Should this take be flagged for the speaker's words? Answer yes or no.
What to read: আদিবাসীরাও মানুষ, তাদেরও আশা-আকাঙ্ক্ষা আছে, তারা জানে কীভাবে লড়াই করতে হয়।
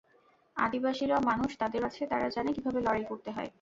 yes